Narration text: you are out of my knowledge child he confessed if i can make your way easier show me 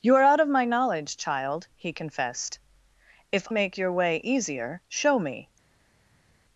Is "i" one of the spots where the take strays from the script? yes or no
yes